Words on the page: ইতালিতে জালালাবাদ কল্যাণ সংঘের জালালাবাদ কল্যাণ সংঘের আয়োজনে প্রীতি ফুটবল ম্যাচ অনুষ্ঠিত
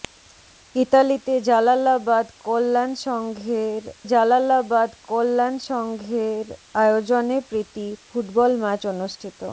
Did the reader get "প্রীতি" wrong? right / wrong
right